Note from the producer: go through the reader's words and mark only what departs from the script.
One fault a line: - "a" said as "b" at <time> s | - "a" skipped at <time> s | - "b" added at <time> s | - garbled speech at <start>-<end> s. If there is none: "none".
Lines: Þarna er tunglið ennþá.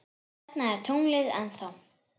none